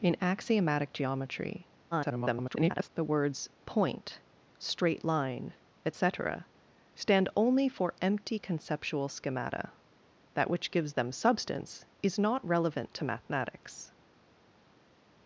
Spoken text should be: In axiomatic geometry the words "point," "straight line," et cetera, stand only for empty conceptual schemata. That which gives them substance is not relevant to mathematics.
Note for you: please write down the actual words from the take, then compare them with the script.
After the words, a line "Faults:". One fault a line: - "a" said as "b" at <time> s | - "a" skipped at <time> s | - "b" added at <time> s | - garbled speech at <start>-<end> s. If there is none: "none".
In axiomatic geometry [garbled] the words "point," "straight line," et cetera, stand only for empty conceptual schemata. That which gives them substance is not relevant to mathematics.
Faults:
- garbled speech at 1.9-2.9 s